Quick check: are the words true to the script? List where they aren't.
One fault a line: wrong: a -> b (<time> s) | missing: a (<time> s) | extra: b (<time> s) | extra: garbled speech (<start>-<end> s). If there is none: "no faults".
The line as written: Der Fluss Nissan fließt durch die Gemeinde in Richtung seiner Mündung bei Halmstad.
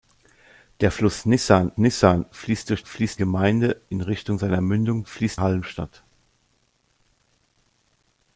extra: Nissan (1.8 s)
wrong: die -> fließt (2.9 s)
wrong: bei -> fließt (5.1 s)